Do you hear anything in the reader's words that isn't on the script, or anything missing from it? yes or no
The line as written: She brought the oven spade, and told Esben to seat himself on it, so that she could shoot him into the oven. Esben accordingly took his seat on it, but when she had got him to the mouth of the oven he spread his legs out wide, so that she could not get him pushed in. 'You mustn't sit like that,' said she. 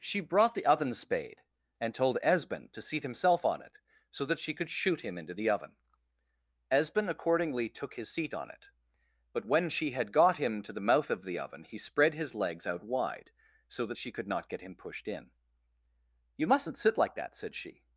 no